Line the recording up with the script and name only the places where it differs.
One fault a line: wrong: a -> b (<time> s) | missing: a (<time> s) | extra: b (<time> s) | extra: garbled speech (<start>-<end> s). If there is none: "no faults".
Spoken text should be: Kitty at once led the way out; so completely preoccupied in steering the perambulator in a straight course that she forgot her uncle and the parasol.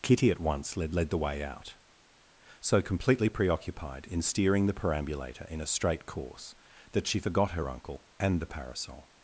extra: led (0.9 s)